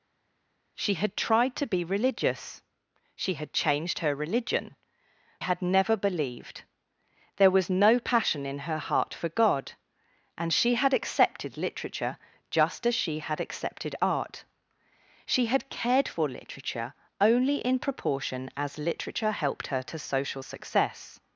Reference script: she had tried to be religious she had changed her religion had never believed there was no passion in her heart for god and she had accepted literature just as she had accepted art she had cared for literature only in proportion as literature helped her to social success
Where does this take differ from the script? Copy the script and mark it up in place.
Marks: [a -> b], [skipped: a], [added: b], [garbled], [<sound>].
she had tried to be religious she had changed her religion had never believed there was no passion in her heart for god and she had accepted literature just as she had accepted art she had cared for literature only in proportion as literature helped her to social success